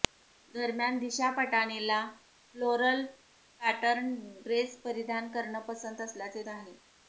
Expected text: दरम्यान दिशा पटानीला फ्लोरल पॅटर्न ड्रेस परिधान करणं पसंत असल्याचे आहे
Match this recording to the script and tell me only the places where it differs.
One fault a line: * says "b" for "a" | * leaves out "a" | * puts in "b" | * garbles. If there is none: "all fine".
all fine